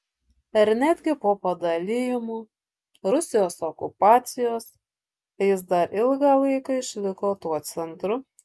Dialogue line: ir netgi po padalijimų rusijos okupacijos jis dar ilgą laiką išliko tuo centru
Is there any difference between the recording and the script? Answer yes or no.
no